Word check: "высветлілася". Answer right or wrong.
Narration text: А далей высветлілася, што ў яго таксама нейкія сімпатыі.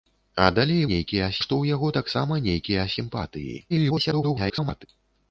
wrong